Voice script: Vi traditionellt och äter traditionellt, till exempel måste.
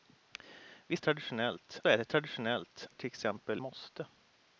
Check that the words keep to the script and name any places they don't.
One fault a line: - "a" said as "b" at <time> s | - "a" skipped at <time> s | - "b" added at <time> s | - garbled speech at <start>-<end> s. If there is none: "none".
none